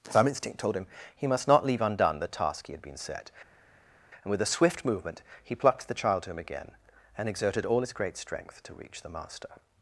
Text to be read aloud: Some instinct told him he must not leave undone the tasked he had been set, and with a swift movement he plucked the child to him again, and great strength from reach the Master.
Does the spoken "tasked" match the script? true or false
false